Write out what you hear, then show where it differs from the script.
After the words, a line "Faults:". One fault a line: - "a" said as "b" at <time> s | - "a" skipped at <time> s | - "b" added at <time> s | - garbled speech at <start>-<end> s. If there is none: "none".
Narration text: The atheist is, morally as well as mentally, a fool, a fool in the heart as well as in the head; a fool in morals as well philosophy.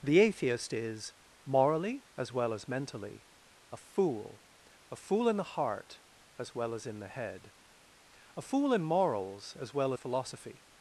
The atheist is, morally as well as mentally, a fool, a fool in the heart as well as in the head; a fool in morals as well philosophy.
Faults:
none